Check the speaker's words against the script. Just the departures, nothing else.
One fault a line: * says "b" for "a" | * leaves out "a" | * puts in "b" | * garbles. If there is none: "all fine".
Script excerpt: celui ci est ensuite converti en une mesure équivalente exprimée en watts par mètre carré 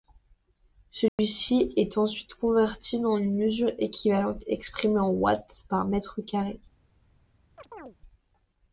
all fine